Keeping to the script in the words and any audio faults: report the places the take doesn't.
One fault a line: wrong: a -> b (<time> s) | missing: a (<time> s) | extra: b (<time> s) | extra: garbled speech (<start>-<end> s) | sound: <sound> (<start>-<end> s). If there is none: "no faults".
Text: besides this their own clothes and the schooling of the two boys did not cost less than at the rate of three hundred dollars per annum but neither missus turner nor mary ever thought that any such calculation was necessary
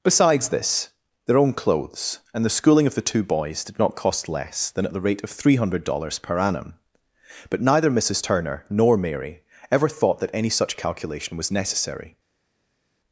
no faults